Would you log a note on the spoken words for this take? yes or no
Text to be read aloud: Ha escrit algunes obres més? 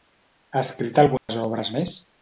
no